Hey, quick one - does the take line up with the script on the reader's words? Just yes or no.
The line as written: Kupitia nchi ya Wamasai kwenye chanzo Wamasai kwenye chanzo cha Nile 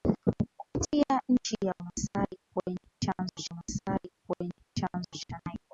yes